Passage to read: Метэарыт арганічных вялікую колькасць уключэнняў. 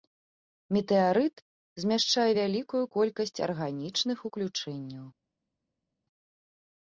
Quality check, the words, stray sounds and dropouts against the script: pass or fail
fail